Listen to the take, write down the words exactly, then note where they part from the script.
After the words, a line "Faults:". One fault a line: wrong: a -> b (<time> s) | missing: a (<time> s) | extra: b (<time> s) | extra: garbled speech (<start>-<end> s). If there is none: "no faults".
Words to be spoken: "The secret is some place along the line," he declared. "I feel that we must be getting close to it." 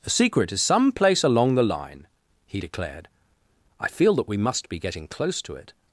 "The secret is some place along the line," he declared. "I feel that we must be getting close to it."
Faults:
no faults